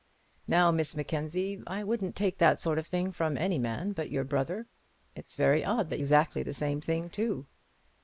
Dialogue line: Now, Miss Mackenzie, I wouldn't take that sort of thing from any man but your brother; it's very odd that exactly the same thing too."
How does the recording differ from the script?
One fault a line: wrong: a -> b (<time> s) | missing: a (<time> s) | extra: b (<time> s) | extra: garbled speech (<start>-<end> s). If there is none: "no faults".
no faults